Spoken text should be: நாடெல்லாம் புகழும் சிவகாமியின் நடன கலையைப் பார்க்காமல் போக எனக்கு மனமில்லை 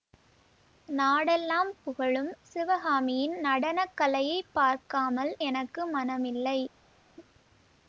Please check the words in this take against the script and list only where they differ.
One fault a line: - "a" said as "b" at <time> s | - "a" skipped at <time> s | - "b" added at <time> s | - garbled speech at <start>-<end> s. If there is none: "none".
- "போக" skipped at 5.3 s